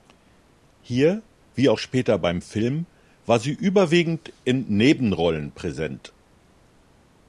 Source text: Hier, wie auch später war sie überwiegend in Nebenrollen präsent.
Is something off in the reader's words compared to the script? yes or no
yes